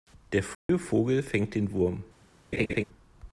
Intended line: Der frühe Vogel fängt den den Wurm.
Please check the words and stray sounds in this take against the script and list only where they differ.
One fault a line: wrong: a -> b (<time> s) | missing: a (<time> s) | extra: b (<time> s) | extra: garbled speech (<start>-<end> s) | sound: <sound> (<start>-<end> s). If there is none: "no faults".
sound: dropout (0.5-0.7 s)
missing: den (1.7 s)
sound: laugh (2.5-2.8 s)